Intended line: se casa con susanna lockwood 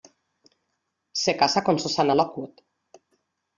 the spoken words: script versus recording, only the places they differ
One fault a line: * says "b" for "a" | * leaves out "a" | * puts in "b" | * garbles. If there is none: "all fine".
all fine